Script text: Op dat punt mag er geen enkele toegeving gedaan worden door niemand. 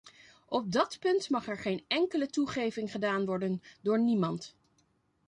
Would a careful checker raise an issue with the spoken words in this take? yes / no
no